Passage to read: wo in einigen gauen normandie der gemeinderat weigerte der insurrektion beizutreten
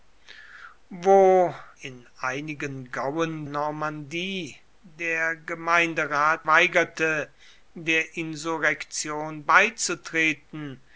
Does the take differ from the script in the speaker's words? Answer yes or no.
no